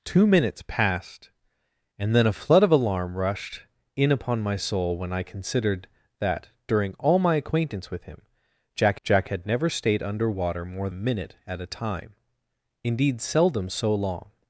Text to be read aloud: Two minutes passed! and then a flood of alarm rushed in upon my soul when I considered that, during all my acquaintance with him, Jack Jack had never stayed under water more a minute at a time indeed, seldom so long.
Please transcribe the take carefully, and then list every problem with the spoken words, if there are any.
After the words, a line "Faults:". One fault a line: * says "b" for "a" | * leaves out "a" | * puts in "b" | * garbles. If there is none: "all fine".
Two minutes passed! and then a flood of alarm rushed in upon my soul when I considered that, during all my acquaintance with him, Jack Jack had never stayed under water more a minute at a time indeed, seldom so long.
Faults:
all fine